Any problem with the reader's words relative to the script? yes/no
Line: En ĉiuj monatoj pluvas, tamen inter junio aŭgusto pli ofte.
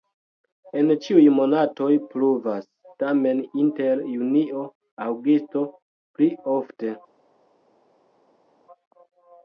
no